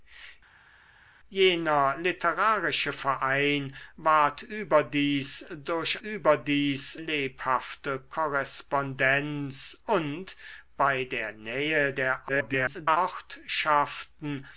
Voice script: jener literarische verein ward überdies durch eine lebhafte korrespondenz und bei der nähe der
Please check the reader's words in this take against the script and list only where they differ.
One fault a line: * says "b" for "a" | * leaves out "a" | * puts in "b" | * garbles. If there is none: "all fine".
* says "überdies" for "eine"
* garbles